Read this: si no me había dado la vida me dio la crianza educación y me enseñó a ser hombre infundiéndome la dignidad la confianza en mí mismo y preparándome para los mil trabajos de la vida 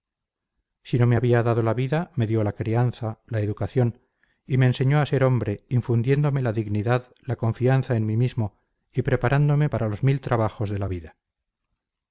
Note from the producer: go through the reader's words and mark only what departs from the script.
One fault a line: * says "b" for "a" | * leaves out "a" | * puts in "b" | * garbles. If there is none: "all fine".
* puts in "la"